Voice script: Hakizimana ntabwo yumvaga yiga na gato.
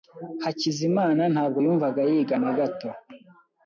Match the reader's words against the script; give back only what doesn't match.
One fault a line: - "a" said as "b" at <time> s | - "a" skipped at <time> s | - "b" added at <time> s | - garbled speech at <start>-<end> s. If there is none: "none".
none